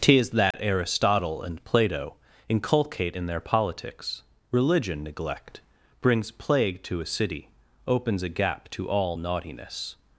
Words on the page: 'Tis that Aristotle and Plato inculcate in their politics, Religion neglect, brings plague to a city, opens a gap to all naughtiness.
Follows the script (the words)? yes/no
yes